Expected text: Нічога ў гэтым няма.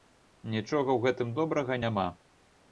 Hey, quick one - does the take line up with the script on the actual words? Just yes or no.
no